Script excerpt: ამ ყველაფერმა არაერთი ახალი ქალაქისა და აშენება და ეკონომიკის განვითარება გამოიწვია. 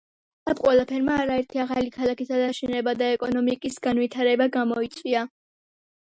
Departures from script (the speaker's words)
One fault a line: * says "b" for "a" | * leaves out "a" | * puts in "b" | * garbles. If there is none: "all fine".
all fine